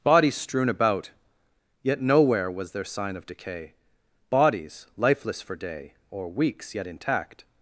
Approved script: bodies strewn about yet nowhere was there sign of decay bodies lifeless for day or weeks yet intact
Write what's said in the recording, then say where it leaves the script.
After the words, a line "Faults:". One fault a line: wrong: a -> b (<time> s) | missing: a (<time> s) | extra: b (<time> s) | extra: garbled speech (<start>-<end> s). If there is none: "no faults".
bodies strewn about yet nowhere was there sign of decay bodies lifeless for day or weeks yet intact
Faults:
no faults